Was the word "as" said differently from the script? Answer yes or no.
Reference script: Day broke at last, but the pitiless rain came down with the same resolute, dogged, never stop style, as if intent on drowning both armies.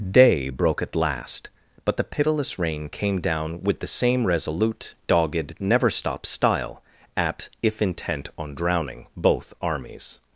yes